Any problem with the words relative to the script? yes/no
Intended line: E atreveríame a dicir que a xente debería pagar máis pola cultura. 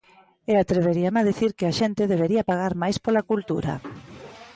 no